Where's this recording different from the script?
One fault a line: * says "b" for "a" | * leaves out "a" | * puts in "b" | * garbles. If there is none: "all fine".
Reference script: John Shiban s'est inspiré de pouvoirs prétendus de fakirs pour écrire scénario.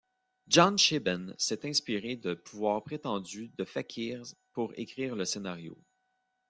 * puts in "le"